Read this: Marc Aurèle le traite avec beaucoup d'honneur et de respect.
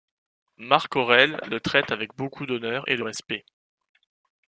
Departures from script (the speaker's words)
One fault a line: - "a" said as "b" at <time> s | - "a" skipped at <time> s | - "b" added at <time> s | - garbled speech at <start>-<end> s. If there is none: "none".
none